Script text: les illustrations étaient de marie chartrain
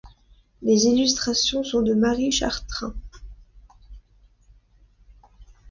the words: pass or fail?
fail